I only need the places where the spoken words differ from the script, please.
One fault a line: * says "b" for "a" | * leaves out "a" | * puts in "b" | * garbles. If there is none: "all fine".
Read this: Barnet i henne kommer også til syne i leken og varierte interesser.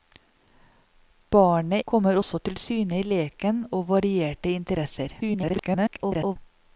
* leaves out "i henne"
* garbles